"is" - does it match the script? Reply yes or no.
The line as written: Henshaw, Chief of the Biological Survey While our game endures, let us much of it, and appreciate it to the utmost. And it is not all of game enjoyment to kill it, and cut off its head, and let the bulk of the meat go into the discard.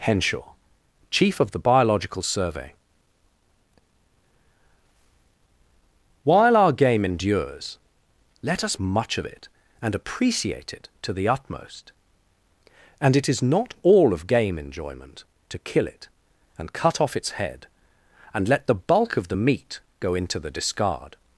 yes